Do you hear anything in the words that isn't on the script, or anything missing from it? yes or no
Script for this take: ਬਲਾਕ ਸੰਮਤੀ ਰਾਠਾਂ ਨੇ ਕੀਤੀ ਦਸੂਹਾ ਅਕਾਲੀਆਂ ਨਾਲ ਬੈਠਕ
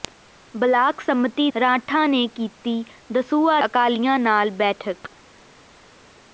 no